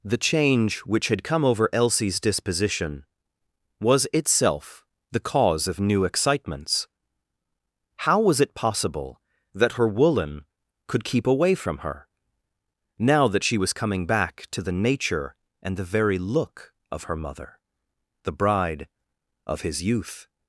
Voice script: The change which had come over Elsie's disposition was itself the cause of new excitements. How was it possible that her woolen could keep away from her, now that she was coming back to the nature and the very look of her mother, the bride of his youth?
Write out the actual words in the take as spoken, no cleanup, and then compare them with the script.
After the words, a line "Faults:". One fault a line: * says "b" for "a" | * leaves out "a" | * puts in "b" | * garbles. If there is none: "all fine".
The change which had come over Elsie's disposition was itself the cause of new excitements. How was it possible that her woolen could keep away from her, now that she was coming back to the nature and the very look of her mother, the bride of his youth?
Faults:
all fine